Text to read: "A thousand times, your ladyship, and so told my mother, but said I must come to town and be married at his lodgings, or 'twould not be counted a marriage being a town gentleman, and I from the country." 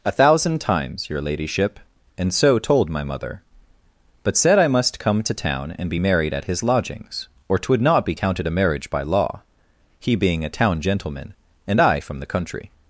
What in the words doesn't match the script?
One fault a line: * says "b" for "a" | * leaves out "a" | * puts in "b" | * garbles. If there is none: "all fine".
* puts in "by law he"